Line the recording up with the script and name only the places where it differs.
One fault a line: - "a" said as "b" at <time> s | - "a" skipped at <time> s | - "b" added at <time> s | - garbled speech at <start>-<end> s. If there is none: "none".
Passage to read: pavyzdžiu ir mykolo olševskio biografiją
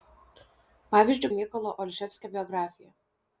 none